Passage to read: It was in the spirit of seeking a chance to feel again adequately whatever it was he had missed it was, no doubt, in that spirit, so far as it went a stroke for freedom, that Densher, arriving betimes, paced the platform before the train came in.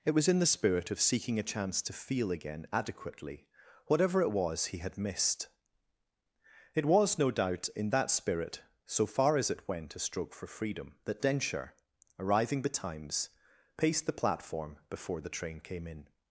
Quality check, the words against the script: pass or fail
pass